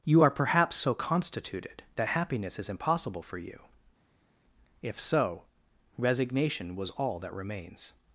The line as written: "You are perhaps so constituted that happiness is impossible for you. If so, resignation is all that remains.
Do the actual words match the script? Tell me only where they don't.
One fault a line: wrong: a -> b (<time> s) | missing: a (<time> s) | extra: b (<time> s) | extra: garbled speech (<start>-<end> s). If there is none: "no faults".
wrong: is -> was (6.8 s)